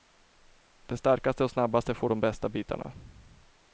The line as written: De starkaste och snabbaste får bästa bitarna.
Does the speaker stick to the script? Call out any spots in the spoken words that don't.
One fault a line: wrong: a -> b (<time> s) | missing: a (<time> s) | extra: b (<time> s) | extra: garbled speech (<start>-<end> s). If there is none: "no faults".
extra: de (2.1 s)